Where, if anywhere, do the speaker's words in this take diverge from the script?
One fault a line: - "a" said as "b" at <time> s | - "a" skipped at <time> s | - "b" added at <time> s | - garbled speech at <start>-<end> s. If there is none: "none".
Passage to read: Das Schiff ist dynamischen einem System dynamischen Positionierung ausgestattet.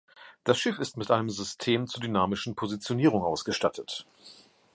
- "dynamischen" said as "mit" at 1.0 s
- "zur" added at 1.9 s